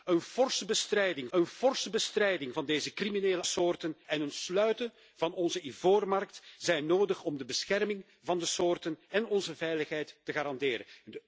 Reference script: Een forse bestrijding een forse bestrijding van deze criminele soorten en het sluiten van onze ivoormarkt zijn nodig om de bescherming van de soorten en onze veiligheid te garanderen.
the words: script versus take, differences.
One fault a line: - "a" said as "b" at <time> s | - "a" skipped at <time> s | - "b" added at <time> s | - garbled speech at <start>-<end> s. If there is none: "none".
none